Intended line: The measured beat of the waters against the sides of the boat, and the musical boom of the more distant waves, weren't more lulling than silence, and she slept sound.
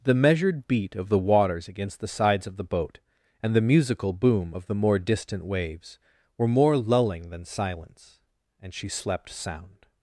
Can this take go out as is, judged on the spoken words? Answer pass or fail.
fail